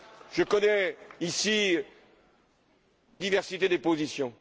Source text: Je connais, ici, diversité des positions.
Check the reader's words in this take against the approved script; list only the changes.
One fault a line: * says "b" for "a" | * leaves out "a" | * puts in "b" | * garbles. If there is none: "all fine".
all fine